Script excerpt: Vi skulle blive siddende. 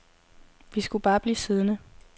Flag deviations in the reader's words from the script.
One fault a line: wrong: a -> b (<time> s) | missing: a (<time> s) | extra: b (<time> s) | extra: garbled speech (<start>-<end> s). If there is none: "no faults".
extra: bare (1.0 s)